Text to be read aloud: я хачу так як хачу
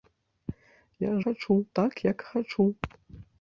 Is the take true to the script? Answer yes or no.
yes